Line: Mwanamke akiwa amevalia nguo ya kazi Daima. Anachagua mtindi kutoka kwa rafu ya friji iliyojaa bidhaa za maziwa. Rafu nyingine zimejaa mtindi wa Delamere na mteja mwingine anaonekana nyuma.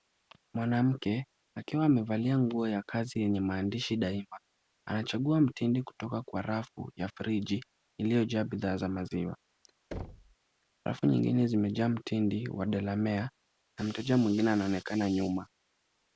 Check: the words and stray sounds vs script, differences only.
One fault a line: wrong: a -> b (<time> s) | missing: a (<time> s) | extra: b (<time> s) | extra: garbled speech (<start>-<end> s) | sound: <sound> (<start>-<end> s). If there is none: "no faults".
extra: yenye maandishi (3.2 s)
sound: thud (9.9-10.4 s)